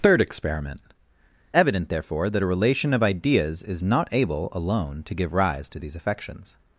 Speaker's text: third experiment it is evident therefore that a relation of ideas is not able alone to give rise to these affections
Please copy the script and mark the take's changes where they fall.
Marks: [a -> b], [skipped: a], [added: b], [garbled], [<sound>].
third experiment [skipped: it is] evident therefore that a relation of ideas is not able alone to give rise to these affections